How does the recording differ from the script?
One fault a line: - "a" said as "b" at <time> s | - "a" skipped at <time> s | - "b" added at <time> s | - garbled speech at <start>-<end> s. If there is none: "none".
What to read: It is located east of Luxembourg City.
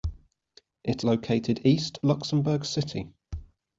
- "is" skipped at 1.1 s
- "of" skipped at 2.0 s